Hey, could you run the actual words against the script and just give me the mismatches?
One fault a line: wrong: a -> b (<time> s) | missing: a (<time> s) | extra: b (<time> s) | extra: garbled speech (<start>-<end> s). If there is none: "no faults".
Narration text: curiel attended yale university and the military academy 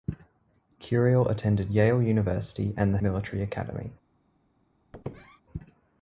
no faults